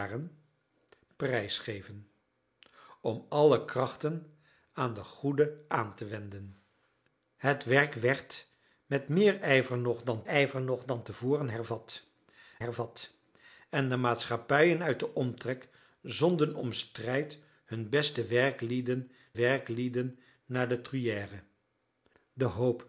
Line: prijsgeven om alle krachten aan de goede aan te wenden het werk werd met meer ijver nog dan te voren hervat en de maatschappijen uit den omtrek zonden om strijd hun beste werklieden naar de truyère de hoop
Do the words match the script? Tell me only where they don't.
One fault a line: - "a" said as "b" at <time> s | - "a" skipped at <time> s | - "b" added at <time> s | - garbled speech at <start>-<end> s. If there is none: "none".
- "ijver nog dan" added at 10.2 s
- "hervat" added at 12.6 s
- "werklieden" added at 19.3 s